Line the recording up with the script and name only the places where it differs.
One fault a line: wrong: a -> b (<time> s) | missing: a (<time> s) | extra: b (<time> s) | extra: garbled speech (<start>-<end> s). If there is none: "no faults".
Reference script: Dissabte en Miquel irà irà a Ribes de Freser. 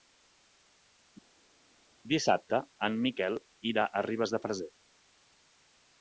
missing: irà (3.9 s)